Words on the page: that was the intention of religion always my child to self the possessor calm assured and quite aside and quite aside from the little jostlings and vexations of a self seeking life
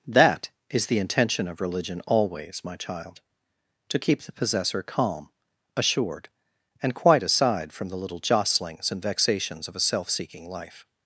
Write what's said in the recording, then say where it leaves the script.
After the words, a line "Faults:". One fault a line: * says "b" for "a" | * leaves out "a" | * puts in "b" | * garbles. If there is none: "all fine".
that is the intention of religion always my child to keep the possessor calm assured and quite aside from the little jostlings and vexations of a self seeking life
Faults:
* says "is" for "was"
* says "keep" for "self"
* leaves out "and quite aside"